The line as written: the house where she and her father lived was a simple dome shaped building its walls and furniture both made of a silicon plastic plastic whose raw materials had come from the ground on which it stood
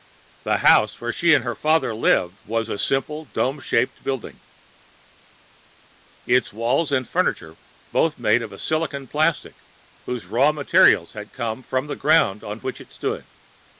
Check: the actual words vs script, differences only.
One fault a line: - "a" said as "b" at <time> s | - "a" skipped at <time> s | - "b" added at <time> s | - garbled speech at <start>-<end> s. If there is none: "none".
- "plastic" skipped at 9.6 s